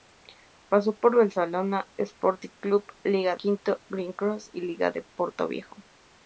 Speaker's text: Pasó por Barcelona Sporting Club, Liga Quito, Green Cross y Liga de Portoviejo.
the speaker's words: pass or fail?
pass